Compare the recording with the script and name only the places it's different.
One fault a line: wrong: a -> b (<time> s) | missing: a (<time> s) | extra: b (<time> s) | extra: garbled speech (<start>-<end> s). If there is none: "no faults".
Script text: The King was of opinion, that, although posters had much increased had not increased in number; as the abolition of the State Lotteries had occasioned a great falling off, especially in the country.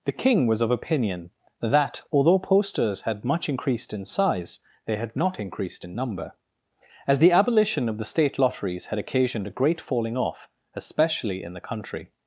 extra: in size they (3.9 s)